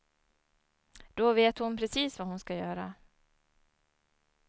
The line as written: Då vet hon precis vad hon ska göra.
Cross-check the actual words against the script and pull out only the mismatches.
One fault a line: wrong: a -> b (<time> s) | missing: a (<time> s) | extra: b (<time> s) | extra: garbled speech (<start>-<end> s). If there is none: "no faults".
no faults